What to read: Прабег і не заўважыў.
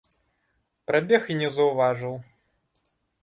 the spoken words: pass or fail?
pass